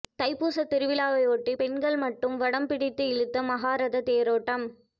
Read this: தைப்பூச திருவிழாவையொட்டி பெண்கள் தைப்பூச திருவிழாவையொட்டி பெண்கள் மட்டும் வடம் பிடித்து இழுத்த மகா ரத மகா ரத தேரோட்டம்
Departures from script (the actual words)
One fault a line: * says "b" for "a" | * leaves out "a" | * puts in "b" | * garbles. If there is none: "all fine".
* leaves out "தைப்பூச திருவிழாவையொட்டி பெண்கள்"
* leaves out "மகா ரத"